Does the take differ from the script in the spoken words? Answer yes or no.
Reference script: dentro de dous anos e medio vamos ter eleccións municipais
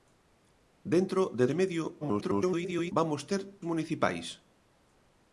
yes